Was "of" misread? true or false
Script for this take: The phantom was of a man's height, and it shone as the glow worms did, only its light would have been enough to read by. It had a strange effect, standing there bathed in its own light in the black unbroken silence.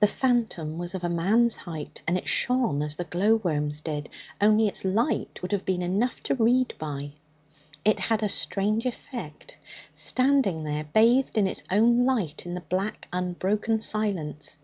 false